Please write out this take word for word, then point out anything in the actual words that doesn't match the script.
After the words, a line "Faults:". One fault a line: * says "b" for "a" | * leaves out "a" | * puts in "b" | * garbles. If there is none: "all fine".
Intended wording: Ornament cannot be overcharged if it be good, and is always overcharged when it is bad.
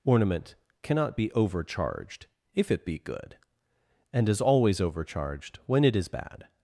Ornament cannot be overcharged if it be good, and is always overcharged when it is bad.
Faults:
all fine